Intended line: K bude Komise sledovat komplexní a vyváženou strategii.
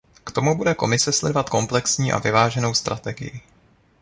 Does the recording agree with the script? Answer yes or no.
no